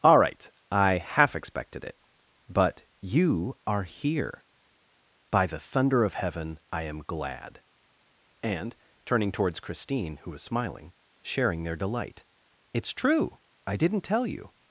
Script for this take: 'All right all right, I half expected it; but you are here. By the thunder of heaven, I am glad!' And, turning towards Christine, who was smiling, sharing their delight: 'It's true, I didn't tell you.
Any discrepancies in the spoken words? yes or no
yes